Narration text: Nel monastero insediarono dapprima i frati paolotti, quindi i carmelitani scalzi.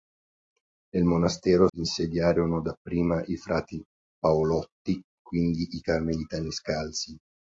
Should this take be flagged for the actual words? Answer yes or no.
no